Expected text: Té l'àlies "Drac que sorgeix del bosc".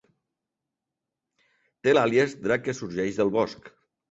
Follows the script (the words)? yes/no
yes